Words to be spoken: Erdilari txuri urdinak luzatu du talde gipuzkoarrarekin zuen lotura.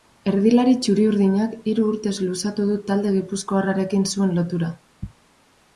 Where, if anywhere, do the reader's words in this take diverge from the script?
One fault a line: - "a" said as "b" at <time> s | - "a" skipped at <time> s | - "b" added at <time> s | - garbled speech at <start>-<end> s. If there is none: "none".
- "hiru urtez" added at 1.7 s